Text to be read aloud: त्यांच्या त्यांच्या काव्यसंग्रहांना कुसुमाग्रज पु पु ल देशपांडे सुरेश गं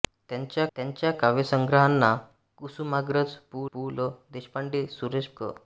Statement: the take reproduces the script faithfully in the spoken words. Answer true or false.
true